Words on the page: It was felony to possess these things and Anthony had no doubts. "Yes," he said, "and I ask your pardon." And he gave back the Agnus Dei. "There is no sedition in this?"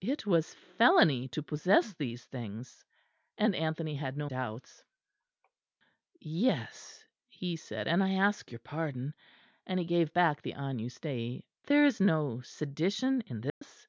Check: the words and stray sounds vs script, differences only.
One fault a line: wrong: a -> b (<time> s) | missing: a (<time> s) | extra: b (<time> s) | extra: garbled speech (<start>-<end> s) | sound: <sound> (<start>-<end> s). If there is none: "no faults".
sound: dropout (13.5-13.6 s)